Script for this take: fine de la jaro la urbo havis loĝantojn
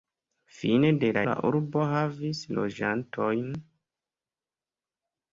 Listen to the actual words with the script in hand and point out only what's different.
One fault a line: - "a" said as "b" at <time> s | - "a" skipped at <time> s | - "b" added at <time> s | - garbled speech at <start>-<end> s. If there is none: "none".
- "jaro" skipped at 1.2 s